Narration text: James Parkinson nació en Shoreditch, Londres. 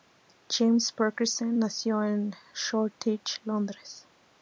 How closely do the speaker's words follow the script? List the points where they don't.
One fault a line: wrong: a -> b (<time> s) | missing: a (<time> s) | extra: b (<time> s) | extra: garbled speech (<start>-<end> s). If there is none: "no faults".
no faults